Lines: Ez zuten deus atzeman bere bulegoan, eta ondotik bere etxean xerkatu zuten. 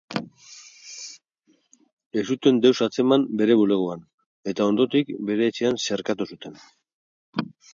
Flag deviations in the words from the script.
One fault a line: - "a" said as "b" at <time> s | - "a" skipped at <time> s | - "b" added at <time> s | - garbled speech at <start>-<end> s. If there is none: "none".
none